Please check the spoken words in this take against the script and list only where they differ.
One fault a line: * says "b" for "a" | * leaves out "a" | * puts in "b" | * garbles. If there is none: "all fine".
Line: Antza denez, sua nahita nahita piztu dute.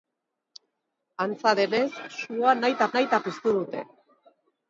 all fine